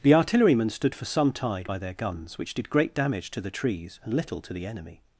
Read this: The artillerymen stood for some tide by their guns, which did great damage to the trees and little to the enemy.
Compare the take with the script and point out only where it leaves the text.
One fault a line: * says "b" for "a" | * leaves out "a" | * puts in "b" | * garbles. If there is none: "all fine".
all fine